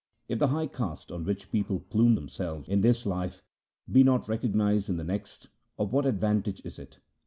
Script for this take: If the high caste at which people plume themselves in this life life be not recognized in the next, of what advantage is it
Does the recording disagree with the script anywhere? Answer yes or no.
yes